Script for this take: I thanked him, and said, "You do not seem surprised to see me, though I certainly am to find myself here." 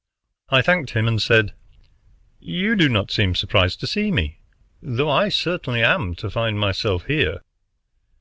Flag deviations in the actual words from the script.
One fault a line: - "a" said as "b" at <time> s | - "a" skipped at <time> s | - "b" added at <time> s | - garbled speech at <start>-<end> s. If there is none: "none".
none